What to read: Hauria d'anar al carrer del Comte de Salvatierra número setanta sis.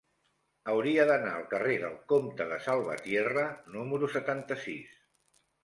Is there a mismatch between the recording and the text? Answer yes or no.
no